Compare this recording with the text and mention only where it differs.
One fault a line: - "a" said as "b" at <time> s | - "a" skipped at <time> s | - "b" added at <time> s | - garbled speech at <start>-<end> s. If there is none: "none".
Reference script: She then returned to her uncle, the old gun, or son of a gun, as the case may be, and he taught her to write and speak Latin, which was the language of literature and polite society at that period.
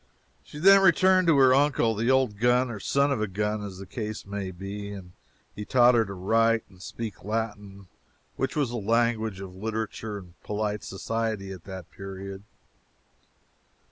none